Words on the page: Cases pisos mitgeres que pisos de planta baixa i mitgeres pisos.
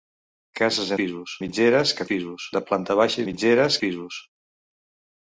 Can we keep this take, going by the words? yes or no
yes